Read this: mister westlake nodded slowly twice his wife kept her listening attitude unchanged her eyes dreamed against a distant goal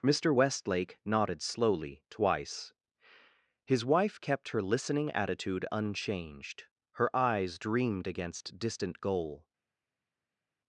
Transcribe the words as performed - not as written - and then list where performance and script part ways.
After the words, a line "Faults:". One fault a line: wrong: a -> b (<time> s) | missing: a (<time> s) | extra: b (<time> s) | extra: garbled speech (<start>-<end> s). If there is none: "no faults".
mister westlake nodded slowly twice his wife kept her listening attitude unchanged her eyes dreamed against distant goal
Faults:
missing: a (8.6 s)